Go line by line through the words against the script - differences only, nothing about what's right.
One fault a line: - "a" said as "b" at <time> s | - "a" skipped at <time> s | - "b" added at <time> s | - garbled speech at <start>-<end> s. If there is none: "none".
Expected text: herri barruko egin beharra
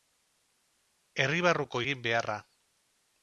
none